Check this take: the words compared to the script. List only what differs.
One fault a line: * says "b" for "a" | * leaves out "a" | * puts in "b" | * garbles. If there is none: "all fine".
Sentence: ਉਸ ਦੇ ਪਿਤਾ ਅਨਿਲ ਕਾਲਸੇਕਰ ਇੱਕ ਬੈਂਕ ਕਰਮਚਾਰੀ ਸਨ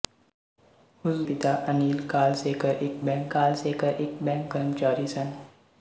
* leaves out "ਦੇ"
* puts in "ਕਾਲਸੇਕਰ ਇੱਕ ਬੈਂਕ"